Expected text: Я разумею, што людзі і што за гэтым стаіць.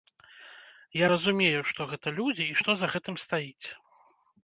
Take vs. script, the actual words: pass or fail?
fail